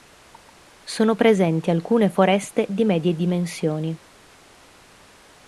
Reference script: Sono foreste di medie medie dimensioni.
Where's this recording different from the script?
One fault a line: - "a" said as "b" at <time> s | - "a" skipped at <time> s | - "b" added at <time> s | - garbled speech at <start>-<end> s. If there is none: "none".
- "presenti alcune" added at 1.1 s
- "medie" skipped at 3.1 s